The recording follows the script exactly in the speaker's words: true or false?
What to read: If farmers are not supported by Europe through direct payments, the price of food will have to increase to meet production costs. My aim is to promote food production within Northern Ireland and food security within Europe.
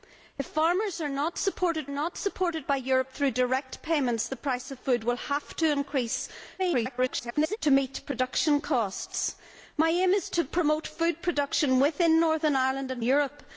false